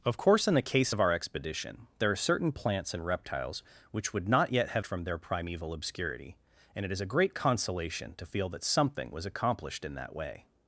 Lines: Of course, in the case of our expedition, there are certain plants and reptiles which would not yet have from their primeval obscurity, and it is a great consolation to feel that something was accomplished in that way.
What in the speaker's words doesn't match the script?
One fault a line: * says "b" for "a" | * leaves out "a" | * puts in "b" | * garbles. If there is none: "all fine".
all fine